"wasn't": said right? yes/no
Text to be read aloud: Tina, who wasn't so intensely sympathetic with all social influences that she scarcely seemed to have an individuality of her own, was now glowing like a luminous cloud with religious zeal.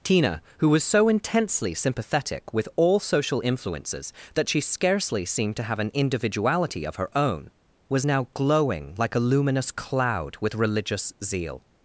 no